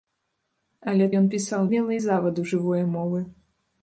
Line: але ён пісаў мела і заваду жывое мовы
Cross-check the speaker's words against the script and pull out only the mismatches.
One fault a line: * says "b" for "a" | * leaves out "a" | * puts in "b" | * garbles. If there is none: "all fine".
all fine